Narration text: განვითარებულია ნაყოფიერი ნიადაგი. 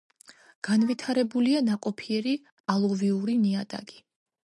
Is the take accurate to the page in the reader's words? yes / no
no